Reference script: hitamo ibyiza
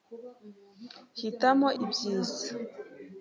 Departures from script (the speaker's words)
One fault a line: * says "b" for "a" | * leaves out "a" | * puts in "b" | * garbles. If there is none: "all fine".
all fine